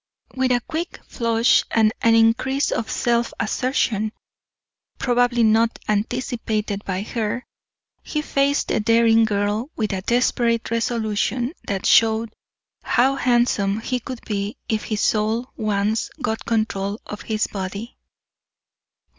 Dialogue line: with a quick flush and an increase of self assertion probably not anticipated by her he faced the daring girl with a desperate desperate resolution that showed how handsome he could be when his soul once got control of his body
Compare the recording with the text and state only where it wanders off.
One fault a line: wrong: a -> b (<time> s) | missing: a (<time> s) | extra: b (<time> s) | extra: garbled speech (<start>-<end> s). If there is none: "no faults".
missing: desperate (10.7 s)
wrong: when -> if (14.7 s)